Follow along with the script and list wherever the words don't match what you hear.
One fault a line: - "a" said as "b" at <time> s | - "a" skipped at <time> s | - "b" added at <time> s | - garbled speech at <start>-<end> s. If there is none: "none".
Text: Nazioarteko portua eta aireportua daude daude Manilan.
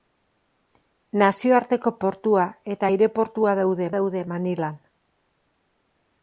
none